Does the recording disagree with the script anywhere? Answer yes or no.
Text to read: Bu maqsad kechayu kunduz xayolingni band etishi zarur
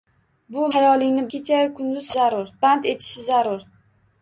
yes